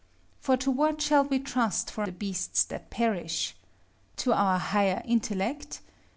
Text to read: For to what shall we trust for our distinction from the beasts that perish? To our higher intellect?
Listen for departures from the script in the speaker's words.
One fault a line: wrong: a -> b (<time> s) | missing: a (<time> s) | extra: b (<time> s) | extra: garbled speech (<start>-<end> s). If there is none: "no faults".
missing: our distinction from (2.0 s)